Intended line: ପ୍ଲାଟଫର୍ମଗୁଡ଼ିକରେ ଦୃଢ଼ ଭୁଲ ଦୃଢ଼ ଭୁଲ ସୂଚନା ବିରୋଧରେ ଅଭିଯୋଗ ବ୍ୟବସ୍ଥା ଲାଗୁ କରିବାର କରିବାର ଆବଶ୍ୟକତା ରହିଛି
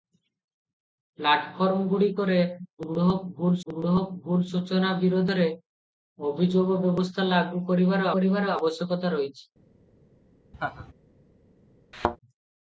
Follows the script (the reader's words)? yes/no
yes